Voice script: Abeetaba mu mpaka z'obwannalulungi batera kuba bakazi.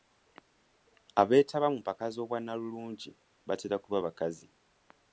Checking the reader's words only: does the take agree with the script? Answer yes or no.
yes